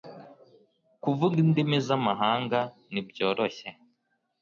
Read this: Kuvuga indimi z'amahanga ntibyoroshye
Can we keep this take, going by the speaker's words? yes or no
yes